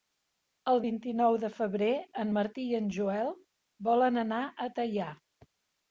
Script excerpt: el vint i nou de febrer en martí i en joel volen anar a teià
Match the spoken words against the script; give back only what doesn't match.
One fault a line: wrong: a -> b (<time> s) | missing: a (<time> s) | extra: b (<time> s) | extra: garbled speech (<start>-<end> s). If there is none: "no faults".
no faults